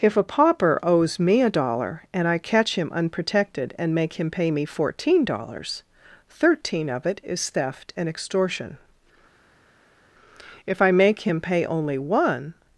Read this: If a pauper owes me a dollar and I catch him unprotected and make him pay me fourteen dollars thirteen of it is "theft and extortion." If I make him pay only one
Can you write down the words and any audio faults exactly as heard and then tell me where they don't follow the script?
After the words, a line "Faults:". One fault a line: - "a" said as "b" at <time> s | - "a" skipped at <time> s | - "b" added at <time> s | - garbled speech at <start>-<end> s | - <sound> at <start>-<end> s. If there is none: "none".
If a pauper owes me a dollar and I catch him unprotected and make him pay me fourteen dollars thirteen of it is "theft and extortion." If I make him pay only one
Faults:
none